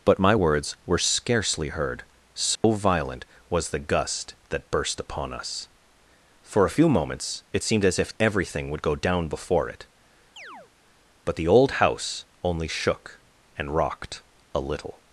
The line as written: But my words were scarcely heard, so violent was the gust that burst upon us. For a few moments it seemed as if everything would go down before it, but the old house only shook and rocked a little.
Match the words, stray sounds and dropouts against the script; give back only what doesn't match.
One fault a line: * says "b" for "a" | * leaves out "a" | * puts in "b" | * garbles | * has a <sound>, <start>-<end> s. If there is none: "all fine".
* has a dropout, 2.6-2.6 s
* has a chirp, 10.4-10.7 s